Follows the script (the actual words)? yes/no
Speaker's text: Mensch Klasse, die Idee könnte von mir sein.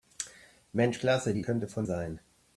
no